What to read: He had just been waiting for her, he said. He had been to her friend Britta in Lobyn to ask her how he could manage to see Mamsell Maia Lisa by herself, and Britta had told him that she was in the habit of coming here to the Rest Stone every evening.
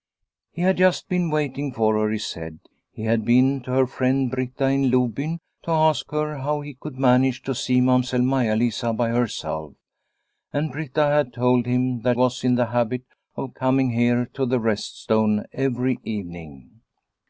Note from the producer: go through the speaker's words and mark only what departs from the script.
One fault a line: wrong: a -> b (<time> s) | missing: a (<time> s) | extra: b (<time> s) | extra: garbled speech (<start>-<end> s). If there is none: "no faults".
missing: she (12.2 s)